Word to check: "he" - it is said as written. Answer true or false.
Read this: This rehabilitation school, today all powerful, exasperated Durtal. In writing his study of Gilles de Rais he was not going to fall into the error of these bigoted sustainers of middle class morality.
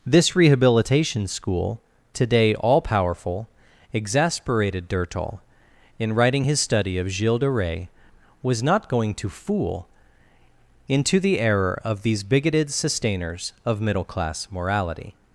false